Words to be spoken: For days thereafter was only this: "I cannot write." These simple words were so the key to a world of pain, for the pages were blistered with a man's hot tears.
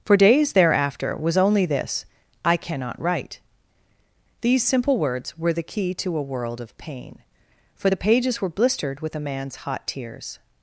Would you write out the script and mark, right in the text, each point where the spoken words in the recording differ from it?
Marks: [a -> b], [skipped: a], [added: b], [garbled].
For days thereafter was only this: "I cannot write." These simple words were [skipped: so] the key to a world of pain, for the pages were blistered with a man's hot tears.